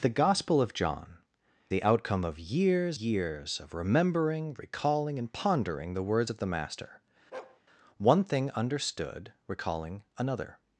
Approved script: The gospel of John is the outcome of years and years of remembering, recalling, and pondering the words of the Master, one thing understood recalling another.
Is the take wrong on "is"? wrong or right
wrong